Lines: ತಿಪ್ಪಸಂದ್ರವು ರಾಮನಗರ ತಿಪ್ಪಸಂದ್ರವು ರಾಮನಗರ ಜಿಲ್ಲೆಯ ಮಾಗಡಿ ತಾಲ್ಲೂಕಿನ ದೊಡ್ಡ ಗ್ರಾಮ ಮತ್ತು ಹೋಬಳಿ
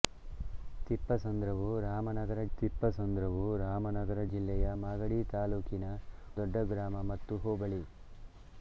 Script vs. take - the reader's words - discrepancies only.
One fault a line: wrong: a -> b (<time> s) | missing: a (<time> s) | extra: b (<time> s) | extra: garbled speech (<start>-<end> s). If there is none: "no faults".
no faults